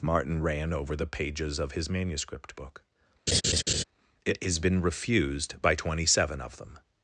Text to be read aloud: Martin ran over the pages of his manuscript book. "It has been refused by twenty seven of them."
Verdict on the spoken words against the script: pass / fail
pass